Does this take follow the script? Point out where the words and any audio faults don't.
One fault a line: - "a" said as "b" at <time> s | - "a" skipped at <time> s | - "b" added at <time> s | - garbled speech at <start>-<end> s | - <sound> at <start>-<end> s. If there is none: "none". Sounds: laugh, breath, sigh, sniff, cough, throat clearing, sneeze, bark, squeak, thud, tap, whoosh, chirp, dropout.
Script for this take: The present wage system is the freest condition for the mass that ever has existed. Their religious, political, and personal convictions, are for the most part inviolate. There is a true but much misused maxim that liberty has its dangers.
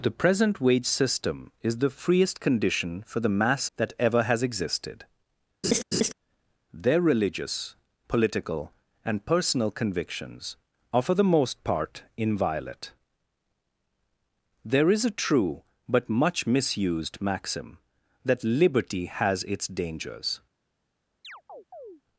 - laugh at 5.6-6.1 s
- chirp at 21.2-22.0 s